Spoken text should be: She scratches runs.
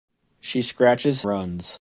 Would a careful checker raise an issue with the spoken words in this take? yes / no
no